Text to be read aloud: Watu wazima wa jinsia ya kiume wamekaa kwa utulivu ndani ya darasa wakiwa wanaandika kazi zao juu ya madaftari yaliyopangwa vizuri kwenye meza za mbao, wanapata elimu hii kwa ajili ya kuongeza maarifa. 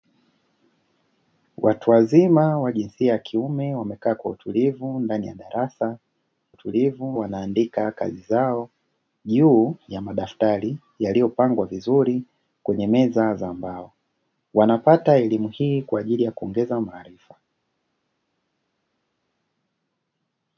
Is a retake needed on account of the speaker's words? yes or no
yes